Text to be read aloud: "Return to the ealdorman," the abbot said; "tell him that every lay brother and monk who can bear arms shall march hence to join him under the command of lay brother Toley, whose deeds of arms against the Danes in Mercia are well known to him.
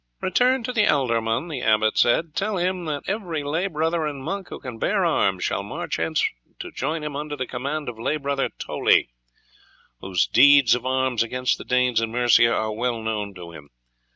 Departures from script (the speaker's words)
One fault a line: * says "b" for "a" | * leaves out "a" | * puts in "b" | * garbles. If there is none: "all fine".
all fine